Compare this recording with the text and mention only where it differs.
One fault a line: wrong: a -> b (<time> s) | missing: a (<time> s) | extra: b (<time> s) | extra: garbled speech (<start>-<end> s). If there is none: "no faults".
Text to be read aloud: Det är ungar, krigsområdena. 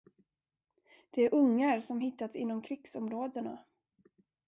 extra: som hittats inom (1.8 s)